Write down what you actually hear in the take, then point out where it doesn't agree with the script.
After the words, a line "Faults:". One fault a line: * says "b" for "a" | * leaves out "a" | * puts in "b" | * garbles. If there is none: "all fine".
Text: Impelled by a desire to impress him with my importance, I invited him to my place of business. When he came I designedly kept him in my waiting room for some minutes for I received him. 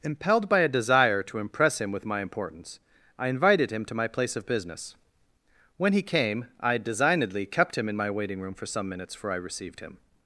Impelled by a desire to impress him with my importance, I invited him to my place of business. When he came I designedly kept him in my waiting room for some minutes for I received him.
Faults:
all fine